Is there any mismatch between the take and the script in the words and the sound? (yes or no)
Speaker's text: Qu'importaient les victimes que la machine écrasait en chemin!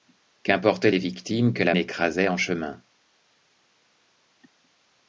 yes